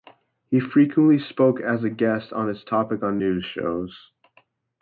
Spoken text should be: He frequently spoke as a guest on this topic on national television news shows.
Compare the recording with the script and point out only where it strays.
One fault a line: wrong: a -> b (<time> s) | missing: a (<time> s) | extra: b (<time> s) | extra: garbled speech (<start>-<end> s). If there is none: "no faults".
missing: national television (3.2 s)